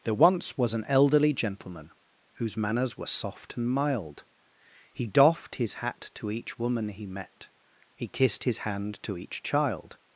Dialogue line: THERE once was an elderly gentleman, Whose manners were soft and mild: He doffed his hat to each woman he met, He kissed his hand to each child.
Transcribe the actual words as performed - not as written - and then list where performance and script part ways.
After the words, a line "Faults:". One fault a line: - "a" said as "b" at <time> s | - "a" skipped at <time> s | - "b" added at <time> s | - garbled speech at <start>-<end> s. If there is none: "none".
THERE once was an elderly gentleman, Whose manners were soft and mild: He doffed his hat to each woman he met, He kissed his hand to each child.
Faults:
none